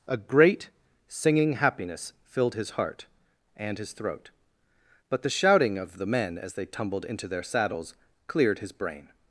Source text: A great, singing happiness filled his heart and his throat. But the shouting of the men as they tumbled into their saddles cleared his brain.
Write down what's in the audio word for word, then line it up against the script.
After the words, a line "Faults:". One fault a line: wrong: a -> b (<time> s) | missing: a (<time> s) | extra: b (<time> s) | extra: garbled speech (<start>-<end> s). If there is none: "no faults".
A great, singing happiness filled his heart and his throat. But the shouting of the men as they tumbled into their saddles cleared his brain.
Faults:
no faults